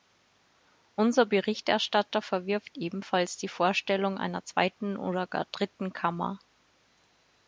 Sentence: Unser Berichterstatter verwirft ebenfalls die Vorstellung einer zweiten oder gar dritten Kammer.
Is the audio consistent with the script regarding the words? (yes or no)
yes